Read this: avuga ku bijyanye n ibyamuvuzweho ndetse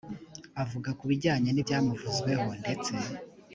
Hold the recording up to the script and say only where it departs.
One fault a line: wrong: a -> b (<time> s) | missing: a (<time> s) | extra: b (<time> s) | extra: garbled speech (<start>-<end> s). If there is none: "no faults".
no faults